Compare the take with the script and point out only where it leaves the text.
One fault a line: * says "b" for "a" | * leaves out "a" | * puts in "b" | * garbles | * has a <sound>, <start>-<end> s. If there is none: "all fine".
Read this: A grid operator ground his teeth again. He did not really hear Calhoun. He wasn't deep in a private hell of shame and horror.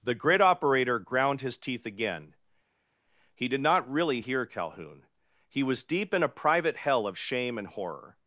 * says "The" for "A"
* says "was" for "wasn't"